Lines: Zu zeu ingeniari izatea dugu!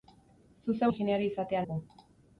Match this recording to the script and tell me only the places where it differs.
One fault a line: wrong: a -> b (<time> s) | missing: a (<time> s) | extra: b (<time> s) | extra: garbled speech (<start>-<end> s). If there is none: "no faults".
no faults